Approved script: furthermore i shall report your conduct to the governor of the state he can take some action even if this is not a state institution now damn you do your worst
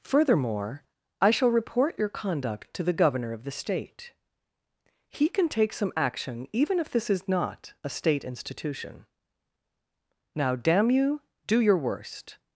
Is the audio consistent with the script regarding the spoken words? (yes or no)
yes